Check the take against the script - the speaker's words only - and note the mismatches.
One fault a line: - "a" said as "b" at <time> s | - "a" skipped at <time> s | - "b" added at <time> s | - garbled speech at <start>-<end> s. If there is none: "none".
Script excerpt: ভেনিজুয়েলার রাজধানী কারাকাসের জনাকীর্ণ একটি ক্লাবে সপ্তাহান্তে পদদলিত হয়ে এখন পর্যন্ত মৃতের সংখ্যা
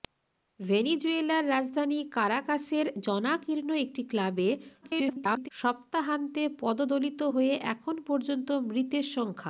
- garbled speech at 4.8-5.5 s